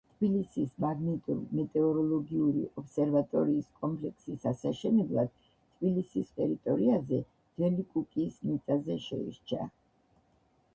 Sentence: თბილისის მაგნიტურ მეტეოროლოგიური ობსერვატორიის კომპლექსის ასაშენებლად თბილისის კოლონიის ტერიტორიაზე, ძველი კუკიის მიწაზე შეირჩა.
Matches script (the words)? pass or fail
fail